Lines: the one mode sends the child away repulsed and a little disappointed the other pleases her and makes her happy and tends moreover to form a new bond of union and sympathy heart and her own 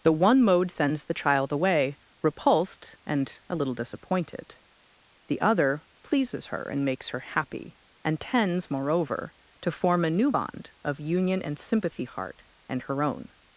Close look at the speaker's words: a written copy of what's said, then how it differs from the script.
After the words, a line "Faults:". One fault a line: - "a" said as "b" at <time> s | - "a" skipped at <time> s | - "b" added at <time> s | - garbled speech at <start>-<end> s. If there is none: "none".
the one mode sends the child away repulsed and a little disappointed the other pleases her and makes her happy and tends moreover to form a new bond of union and sympathy heart and her own
Faults:
none